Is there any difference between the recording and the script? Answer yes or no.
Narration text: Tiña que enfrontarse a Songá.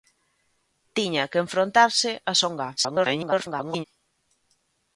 yes